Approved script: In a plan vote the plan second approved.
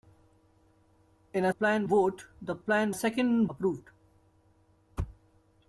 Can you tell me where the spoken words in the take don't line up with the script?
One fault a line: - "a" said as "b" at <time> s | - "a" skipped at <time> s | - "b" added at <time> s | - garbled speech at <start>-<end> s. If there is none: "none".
none